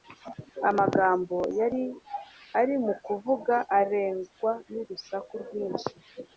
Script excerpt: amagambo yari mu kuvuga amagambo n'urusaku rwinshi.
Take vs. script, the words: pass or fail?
fail